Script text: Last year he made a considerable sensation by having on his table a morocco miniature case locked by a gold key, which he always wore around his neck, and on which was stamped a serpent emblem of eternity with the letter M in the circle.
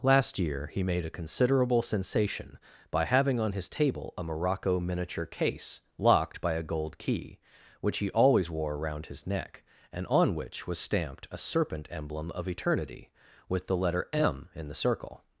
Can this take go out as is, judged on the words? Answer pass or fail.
pass